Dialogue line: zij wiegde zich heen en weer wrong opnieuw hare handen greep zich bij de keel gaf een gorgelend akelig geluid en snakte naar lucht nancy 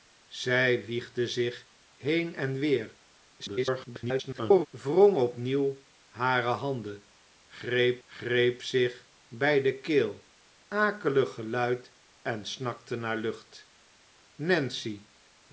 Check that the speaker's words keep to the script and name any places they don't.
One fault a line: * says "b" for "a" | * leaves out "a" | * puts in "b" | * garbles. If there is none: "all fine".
* garbles
* puts in "greep"
* leaves out "gaf een gorgelend"